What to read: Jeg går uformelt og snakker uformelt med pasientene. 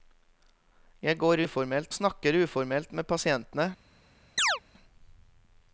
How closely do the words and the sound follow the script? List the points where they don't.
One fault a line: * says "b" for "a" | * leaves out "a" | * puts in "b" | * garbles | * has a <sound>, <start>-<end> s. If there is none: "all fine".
* has a chirp, 4.4-4.6 s